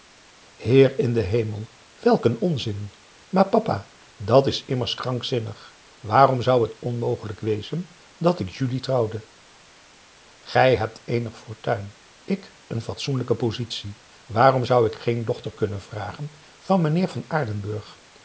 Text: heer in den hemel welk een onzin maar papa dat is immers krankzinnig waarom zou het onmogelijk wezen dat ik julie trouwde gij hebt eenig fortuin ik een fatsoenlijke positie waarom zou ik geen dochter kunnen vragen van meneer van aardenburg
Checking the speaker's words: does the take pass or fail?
pass